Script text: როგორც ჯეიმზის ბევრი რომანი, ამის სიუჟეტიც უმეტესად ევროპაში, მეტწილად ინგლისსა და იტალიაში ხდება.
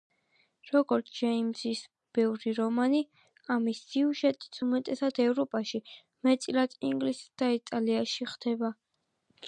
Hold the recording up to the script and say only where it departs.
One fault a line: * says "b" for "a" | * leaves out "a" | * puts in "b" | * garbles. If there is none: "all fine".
all fine